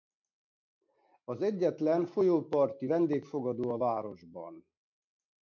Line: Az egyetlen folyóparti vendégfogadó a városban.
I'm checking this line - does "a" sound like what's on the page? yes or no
yes